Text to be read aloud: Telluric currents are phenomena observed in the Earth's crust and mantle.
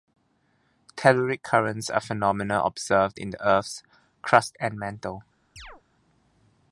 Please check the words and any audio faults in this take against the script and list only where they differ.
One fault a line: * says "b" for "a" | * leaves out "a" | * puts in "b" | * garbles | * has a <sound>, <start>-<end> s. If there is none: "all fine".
* has a chirp, 5.6-5.8 s